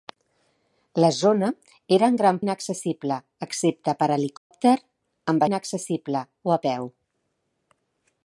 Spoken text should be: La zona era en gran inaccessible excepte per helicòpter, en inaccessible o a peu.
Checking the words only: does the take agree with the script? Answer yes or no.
yes